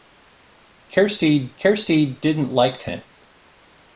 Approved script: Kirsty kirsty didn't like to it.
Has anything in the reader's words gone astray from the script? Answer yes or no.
no